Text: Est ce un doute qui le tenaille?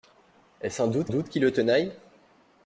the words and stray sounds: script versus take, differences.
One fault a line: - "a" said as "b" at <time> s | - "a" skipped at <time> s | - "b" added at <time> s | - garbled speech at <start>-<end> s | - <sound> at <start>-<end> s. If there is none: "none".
- "doute" added at 1.1 s